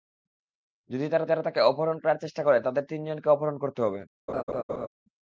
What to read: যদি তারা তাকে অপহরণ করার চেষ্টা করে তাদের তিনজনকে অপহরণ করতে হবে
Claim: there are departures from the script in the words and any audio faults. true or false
true